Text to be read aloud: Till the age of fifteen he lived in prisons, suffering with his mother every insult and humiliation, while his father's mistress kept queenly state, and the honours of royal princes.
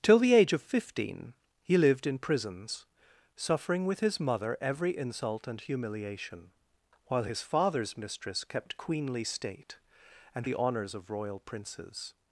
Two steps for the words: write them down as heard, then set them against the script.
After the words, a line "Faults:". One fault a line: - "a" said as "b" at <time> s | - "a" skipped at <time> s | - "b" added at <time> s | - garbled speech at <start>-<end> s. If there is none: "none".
Till the age of fifteen he lived in prisons, suffering with his mother every insult and humiliation, while his father's mistress kept queenly state, and the honours of royal princes.
Faults:
none